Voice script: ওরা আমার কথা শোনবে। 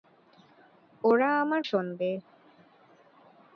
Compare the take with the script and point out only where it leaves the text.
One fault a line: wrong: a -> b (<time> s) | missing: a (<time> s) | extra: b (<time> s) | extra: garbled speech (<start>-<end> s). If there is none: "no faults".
missing: কথা (1.6 s)